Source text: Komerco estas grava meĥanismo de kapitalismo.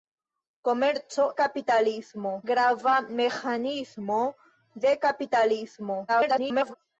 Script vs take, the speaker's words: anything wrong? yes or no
yes